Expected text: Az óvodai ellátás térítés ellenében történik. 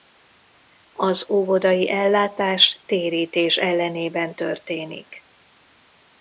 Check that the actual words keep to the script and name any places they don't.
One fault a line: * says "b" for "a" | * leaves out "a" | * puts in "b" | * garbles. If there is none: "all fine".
all fine